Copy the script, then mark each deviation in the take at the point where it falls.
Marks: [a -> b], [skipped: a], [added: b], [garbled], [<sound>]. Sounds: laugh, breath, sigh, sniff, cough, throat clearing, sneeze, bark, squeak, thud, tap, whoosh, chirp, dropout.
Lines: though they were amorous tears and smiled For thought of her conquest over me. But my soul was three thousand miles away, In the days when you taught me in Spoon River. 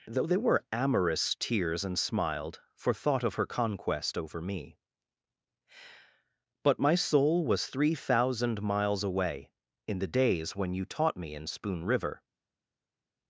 though they were amorous tears and smiled For thought of her conquest over me. But my soul was three thousand miles away, In the days when you taught me in Spoon River.